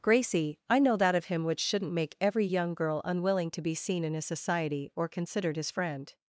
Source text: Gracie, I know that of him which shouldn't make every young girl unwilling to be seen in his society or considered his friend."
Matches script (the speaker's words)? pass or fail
pass